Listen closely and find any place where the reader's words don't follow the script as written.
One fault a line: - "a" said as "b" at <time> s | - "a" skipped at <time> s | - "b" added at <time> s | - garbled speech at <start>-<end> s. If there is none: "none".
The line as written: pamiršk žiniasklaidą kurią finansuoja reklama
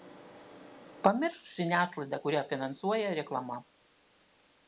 none